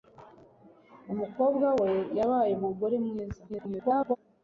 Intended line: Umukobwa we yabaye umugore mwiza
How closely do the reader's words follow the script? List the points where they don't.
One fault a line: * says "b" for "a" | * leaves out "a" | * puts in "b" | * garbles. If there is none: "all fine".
* garbles